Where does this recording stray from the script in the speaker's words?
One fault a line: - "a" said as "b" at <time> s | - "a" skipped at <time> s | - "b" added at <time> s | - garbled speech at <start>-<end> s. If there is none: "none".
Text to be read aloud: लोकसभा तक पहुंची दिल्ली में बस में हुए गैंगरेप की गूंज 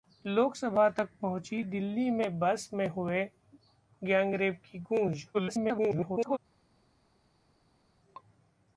- garbled speech at 5.3-6.4 s